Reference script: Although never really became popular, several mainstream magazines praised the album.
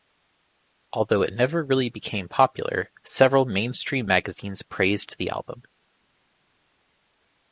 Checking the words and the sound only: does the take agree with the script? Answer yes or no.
no